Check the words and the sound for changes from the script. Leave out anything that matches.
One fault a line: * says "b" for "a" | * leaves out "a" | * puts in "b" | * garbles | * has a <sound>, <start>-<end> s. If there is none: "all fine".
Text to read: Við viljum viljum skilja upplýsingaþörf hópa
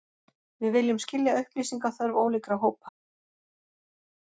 * leaves out "viljum"
* puts in "ólíkra"